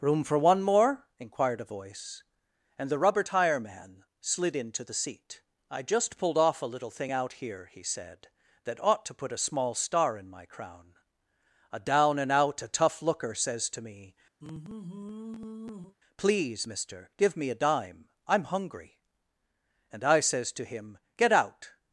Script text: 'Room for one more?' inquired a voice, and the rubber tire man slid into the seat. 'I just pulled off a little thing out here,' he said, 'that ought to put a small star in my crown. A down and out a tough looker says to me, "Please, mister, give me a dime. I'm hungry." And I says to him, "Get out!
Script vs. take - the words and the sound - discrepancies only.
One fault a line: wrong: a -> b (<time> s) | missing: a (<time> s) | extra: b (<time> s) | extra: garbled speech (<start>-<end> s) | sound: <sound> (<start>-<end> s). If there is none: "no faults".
sound: sigh (14.4-16.0 s)